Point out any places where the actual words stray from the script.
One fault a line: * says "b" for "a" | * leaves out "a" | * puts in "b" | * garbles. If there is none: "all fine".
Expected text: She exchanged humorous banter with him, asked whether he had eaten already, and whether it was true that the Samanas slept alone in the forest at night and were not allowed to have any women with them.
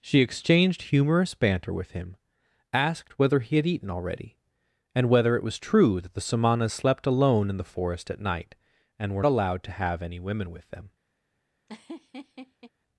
* leaves out "not"